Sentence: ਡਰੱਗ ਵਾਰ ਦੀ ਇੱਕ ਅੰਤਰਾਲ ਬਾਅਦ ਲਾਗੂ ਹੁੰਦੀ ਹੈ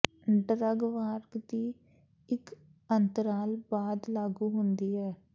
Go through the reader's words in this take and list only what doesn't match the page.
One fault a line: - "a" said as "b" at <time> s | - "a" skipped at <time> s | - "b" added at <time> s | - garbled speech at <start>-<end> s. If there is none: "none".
none